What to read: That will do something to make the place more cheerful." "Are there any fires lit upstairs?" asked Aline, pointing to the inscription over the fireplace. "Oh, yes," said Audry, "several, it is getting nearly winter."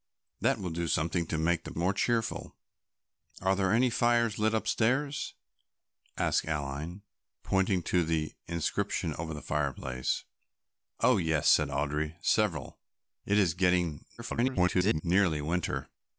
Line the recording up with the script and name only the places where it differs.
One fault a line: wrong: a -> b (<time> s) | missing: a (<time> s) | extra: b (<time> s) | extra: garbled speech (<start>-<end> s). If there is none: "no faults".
missing: place (1.8 s)
extra: garbled speech (14.2-15.0 s)